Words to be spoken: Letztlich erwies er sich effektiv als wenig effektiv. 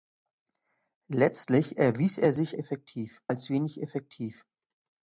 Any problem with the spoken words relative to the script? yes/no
no